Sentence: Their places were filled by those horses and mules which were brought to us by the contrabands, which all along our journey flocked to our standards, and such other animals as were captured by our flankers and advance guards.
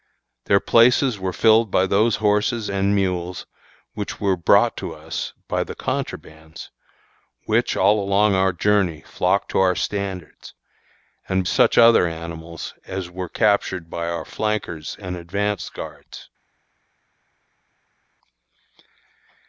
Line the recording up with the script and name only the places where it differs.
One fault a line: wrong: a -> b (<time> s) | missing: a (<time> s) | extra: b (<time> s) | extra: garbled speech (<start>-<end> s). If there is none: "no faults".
no faults